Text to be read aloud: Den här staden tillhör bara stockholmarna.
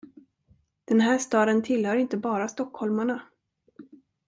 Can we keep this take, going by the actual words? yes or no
no